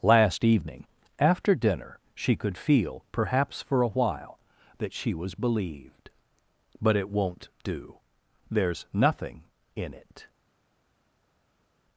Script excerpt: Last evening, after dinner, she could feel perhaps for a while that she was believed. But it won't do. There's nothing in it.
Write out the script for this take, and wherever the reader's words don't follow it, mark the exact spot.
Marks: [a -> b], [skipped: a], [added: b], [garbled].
Last evening, after dinner, she could feel perhaps for a while that she was believed. But it won't do. There's nothing in it.